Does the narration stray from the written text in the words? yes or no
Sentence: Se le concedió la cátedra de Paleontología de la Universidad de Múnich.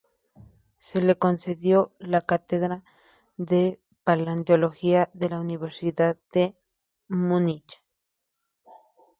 no